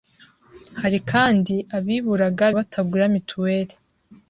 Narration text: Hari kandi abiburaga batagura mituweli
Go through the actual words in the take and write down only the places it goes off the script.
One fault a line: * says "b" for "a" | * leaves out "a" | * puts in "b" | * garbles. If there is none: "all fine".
all fine